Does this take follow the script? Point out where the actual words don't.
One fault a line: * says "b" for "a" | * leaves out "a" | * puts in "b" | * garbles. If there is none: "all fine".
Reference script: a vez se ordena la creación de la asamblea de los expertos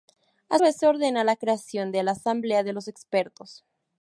all fine